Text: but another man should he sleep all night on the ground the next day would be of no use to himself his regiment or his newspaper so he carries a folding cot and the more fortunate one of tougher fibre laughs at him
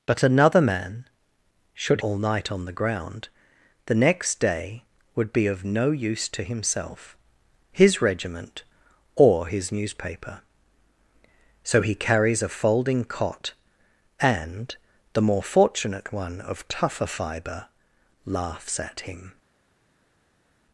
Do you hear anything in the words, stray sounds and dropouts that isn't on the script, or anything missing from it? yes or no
yes